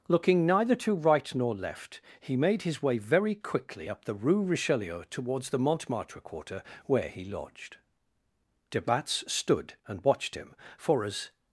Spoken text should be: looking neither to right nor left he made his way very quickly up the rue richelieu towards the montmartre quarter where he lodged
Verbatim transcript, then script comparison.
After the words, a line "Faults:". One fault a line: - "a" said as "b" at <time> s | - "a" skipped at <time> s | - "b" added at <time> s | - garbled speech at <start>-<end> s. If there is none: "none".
looking neither to right nor left he made his way very quickly up the rue richelieu towards the montmartre quarter where he lodged de batz stood and watched him for as
Faults:
- "de batz stood and watched him for as" added at 8.7 s